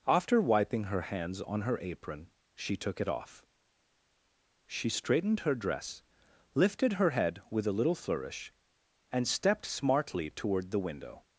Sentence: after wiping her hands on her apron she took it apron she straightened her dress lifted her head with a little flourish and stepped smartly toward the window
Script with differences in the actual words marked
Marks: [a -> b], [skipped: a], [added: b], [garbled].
after wiping her hands on her apron she took it [apron -> off] she straightened her dress lifted her head with a little flourish and stepped smartly toward the window